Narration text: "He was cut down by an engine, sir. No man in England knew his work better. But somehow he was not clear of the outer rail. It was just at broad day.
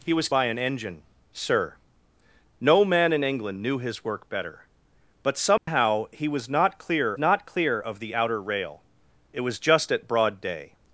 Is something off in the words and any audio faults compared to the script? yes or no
yes